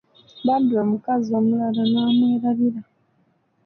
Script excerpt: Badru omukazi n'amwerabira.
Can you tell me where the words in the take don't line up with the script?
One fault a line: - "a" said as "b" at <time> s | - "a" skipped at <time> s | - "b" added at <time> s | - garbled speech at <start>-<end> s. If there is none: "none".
- "omulala" added at 1.4 s